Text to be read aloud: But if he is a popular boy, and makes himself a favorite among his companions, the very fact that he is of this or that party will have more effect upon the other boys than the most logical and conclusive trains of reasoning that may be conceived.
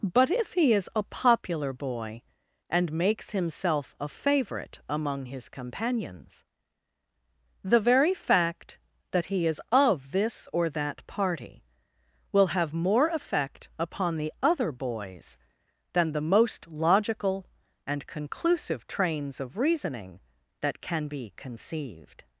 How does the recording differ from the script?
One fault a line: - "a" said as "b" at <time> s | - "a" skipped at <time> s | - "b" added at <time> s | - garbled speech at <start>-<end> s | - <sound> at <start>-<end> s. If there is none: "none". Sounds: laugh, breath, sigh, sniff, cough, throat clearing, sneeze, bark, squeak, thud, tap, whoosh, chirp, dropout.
- "may" said as "can" at 20.8 s